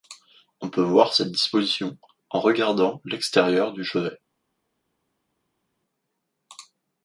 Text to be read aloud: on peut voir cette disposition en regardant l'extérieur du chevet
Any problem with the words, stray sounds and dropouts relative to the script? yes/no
no